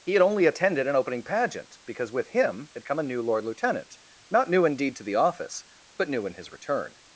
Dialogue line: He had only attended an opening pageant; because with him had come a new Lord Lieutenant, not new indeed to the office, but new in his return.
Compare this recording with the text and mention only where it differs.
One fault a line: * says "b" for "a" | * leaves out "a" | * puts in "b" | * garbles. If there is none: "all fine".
all fine